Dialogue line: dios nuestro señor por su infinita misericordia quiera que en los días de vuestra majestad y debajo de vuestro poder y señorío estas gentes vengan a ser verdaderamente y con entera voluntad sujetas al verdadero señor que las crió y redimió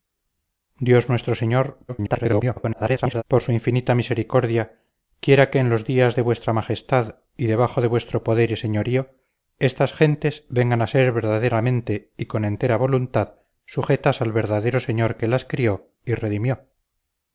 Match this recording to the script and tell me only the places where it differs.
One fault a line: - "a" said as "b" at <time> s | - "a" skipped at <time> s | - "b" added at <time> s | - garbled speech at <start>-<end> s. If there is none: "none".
- garbled speech at 1.9-3.2 s